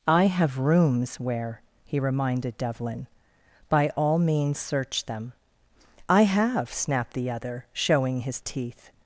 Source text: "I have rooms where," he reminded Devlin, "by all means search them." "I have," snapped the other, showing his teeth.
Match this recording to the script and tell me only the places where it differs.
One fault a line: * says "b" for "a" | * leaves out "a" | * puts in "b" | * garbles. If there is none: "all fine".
all fine